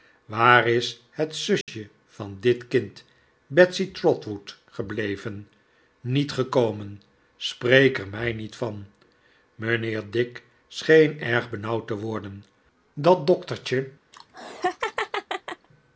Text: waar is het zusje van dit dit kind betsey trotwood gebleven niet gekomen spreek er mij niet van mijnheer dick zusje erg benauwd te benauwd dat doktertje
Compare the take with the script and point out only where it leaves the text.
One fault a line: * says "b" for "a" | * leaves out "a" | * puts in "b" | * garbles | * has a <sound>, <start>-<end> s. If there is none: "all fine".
* has a dropout, 1.6-1.7 s
* leaves out "dit"
* says "scheen" for "zusje"
* says "worden" for "benauwd"
* has a laugh, 14.1-15.7 s